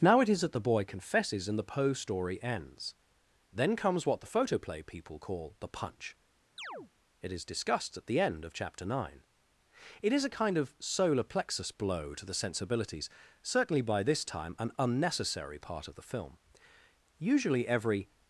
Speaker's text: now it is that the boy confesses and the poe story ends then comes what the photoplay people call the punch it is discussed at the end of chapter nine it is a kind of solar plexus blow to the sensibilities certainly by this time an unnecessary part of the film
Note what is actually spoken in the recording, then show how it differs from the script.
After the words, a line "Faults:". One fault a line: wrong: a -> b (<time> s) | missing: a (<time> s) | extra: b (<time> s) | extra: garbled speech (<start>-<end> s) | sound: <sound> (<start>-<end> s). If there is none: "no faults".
now it is that the boy confesses and the poe story ends then comes what the photoplay people call the punch it is discussed at the end of chapter nine it is a kind of solar plexus blow to the sensibilities certainly by this time an unnecessary part of the film usually every
Faults:
sound: chirp (6.6-6.9 s)
extra: usually every (17.2 s)